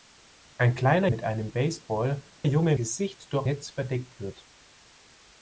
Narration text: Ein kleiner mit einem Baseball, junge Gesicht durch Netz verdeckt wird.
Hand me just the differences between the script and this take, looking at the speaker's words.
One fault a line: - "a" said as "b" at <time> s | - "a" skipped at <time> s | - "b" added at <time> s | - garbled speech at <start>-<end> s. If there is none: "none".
none